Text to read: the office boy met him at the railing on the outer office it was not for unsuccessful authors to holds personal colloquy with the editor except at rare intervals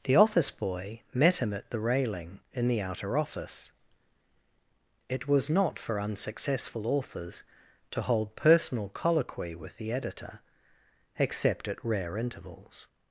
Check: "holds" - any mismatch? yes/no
yes